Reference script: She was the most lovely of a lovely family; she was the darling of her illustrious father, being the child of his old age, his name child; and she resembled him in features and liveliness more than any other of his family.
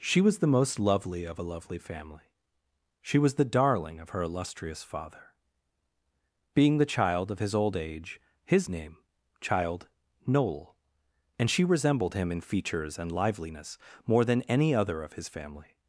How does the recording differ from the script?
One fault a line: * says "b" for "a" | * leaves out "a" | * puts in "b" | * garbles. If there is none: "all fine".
* puts in "noel"